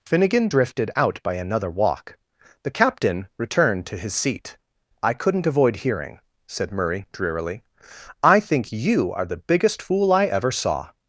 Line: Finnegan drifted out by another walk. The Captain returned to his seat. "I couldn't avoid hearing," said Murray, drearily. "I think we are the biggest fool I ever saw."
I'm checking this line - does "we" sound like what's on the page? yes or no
no